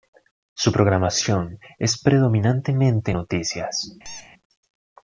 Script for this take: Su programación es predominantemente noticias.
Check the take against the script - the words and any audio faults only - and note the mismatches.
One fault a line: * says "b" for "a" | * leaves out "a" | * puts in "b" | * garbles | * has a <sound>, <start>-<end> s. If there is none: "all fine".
* has a squeak, 4.0-4.3 s